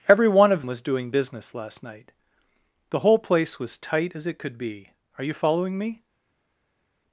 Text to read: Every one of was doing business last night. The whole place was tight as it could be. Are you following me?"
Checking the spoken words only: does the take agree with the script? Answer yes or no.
yes